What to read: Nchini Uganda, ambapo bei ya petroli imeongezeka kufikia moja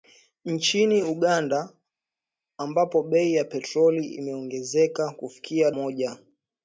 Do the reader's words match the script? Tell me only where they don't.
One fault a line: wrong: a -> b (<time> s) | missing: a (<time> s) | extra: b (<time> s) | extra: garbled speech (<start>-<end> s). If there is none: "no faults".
no faults